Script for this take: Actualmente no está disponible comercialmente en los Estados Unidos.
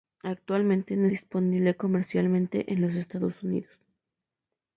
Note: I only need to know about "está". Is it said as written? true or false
false